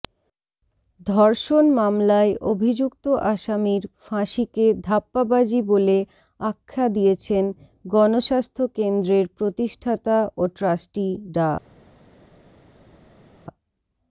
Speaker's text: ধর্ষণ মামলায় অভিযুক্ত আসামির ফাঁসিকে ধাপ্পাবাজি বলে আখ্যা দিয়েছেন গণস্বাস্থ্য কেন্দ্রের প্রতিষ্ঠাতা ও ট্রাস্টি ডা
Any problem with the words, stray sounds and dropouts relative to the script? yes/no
no